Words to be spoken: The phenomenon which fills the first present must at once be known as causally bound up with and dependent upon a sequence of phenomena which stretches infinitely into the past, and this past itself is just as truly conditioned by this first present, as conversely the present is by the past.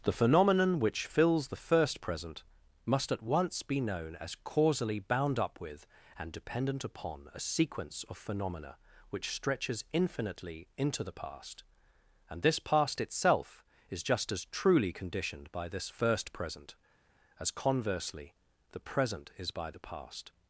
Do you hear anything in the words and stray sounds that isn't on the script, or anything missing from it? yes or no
no